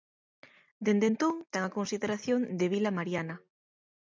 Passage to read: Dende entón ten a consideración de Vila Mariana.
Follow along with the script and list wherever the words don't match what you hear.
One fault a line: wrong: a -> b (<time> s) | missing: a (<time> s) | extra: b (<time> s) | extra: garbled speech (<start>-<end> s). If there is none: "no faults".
no faults